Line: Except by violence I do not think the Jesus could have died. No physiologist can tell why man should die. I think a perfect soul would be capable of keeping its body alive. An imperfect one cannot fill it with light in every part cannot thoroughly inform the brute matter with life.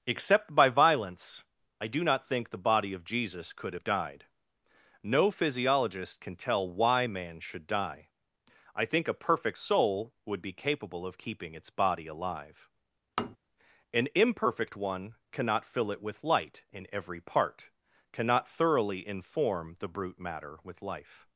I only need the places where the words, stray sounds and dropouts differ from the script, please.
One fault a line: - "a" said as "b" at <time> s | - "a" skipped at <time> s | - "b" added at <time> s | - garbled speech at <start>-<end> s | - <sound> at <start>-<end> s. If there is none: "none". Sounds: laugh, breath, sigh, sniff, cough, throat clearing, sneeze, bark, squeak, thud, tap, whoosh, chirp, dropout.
- "body of" added at 2.7 s
- tap at 13.2-13.4 s